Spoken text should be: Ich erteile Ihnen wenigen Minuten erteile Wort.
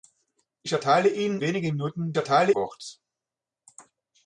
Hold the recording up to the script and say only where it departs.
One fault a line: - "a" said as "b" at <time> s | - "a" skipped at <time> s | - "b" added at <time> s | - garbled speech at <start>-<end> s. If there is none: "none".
none